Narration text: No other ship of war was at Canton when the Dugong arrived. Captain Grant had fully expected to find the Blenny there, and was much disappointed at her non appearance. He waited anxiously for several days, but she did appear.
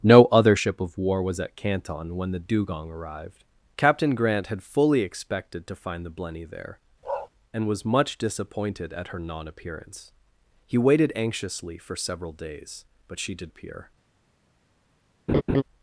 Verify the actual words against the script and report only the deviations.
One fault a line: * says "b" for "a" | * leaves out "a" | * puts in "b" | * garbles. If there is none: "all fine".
all fine